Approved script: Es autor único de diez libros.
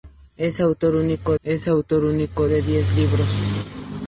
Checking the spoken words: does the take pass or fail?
fail